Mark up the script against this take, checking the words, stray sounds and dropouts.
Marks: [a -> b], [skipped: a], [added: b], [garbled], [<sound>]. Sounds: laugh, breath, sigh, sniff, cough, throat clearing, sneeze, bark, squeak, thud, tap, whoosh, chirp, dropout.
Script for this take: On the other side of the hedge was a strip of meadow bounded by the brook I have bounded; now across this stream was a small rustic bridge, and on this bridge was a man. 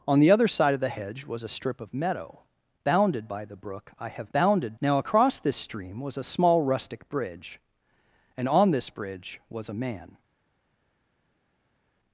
On the other side of the hedge was a strip of meadow bounded by the brook I have bounded; now across this stream was a small rustic bridge, and on this bridge was a man.